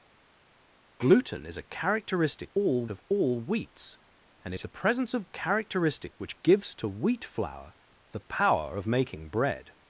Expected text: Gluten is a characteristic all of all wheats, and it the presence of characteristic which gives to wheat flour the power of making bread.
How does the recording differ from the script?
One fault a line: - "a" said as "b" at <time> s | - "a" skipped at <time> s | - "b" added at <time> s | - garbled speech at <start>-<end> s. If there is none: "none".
none